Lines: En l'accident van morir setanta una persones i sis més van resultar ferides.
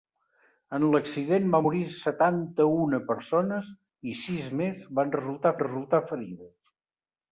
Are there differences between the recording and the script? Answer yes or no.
yes